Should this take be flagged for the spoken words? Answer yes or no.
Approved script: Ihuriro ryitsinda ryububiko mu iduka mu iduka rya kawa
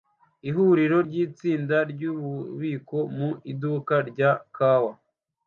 yes